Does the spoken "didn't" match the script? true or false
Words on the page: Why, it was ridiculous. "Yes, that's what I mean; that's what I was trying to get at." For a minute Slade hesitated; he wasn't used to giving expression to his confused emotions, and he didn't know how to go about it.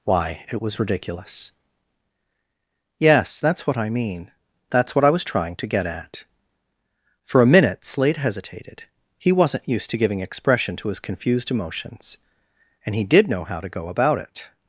false